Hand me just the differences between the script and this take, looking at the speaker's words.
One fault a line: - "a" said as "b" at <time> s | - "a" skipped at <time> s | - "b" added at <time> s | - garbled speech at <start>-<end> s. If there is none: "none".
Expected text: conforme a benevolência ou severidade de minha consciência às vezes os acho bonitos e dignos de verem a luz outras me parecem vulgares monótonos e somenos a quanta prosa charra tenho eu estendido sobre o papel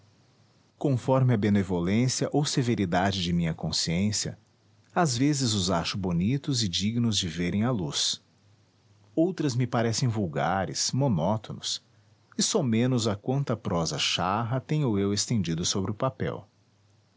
none